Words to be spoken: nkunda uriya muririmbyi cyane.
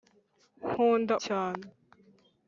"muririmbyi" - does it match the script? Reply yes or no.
no